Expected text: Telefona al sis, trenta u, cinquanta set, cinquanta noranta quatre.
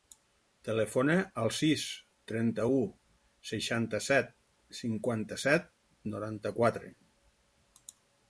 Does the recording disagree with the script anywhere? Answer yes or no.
yes